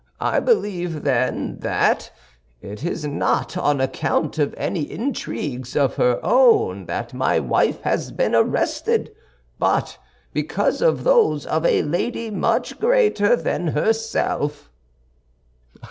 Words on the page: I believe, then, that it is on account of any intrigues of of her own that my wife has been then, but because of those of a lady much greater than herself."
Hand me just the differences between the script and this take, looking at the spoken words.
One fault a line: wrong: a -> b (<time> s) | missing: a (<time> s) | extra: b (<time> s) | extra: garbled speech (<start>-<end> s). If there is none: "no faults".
extra: not (3.0 s)
missing: of (5.9 s)
wrong: then -> arrested (8.3 s)